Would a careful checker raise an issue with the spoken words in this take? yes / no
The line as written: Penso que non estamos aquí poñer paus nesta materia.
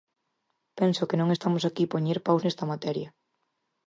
no